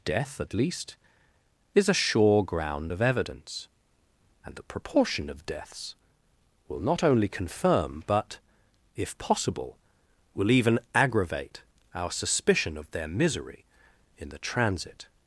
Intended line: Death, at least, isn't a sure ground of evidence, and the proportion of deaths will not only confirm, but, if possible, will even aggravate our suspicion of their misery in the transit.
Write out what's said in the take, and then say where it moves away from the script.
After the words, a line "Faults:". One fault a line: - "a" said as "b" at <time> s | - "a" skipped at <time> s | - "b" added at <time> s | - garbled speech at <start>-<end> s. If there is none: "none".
Death, at least, is a sure ground of evidence, and the proportion of deaths will not only confirm, but, if possible, will even aggravate our suspicion of their misery in the transit.
Faults:
- "isn't" said as "is" at 1.8 s